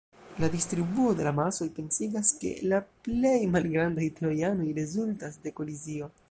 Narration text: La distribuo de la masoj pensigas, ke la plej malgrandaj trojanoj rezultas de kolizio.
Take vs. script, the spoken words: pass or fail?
pass